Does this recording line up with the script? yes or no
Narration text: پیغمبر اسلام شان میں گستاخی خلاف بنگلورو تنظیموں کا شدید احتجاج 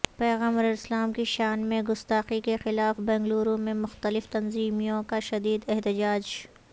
no